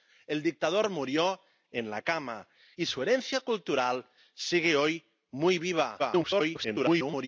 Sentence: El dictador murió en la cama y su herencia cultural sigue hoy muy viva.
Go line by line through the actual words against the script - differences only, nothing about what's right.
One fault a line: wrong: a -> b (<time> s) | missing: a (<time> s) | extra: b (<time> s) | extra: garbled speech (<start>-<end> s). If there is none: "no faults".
extra: garbled speech (6.0-7.3 s)